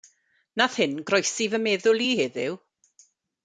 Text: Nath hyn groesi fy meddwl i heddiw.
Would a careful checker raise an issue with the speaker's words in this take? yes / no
no